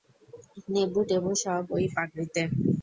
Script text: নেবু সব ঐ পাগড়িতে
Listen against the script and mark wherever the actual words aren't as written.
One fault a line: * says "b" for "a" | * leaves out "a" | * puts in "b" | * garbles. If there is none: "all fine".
* puts in "টেবু"